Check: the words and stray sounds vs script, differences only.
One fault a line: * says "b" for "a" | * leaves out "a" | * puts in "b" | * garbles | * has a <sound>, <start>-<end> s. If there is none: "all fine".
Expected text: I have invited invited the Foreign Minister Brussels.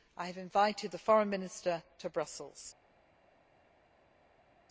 * leaves out "invited"
* puts in "to"